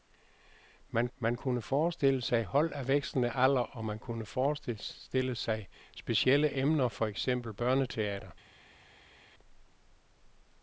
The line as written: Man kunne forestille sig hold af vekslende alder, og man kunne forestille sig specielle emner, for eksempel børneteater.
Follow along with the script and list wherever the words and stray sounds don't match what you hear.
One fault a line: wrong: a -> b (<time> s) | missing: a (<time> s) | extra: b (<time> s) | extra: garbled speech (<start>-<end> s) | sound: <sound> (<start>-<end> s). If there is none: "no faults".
extra: man (1.2 s)